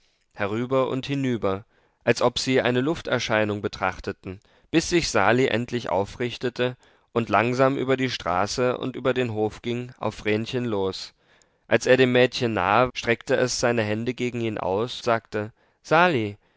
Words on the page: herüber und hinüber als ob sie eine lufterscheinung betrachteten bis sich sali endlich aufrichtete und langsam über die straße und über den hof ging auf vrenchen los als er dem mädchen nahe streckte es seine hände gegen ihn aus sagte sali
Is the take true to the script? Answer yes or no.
yes